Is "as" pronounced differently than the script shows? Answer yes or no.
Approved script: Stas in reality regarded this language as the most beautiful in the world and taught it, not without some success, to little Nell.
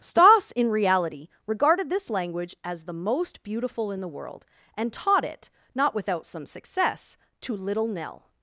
no